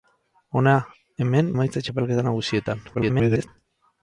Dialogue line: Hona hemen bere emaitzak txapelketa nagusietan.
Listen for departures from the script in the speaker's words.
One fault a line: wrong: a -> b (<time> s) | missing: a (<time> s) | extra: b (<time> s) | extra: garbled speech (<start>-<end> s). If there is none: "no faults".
missing: bere (1.5 s)
extra: garbled speech (2.9-3.5 s)